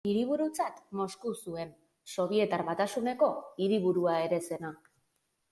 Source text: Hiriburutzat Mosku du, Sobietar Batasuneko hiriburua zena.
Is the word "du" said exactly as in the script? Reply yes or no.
no